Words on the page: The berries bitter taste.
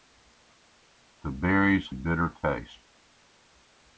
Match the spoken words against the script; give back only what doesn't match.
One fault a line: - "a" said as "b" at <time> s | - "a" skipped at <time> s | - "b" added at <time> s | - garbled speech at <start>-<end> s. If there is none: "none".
none